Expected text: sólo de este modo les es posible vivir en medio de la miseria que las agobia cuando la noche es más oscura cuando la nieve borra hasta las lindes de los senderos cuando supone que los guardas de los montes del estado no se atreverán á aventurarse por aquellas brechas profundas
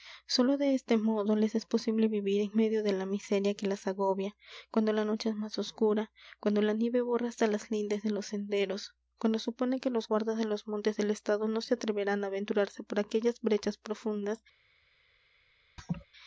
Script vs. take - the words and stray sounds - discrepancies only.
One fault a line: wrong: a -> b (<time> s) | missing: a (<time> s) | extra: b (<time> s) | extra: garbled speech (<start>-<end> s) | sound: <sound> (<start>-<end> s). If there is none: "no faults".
sound: laugh (15.8-16.1 s)